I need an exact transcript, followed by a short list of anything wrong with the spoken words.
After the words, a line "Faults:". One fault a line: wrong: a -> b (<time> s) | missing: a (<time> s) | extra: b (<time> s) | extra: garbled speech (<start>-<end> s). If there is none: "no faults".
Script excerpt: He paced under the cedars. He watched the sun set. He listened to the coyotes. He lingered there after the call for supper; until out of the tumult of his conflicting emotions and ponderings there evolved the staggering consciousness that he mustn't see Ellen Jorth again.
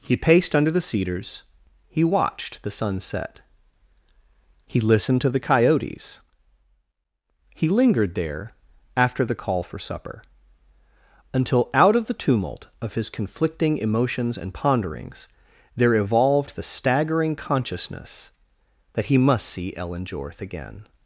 He paced under the cedars. He watched the sun set. He listened to the coyotes. He lingered there after the call for supper; until out of the tumult of his conflicting emotions and ponderings there evolved the staggering consciousness that he must see Ellen Jorth again.
Faults:
wrong: mustn't -> must (19.2 s)